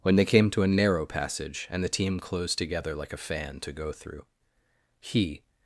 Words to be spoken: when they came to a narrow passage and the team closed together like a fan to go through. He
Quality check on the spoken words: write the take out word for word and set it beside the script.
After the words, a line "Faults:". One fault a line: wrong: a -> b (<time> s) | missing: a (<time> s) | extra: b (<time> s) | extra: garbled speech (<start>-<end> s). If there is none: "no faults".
when they came to a narrow passage and the team closed together like a fan to go through. He
Faults:
no faults